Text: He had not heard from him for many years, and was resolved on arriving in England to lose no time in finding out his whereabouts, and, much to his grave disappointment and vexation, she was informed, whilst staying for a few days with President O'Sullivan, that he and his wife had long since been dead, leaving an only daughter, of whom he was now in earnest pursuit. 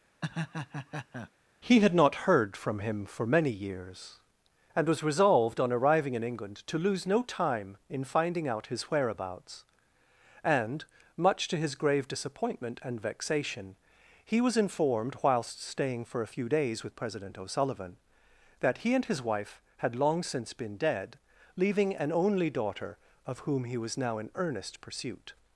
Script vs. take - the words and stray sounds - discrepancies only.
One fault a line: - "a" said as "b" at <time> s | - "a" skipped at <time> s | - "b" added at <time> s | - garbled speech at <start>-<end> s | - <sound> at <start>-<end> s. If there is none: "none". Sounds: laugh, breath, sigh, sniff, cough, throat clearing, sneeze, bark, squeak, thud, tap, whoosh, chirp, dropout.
- laugh at 0.2-1.3 s
- "she" said as "he" at 14.2 s